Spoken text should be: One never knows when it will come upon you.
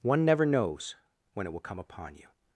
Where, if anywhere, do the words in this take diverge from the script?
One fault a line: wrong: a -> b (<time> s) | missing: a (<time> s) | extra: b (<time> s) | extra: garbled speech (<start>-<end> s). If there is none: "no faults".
no faults